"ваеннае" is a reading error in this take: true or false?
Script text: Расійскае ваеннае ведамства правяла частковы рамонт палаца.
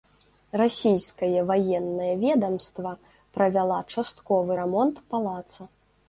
false